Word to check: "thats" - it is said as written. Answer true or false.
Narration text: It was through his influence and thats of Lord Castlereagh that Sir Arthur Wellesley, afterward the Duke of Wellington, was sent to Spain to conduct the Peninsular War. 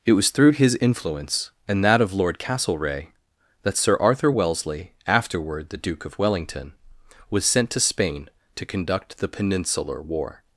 false